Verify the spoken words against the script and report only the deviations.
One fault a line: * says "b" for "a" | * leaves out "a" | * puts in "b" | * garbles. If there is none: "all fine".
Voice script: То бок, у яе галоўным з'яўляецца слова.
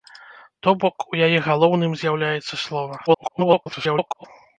* garbles